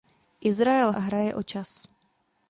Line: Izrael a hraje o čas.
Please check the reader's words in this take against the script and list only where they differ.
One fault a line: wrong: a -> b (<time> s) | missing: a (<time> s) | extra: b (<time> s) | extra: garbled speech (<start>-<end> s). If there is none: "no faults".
no faults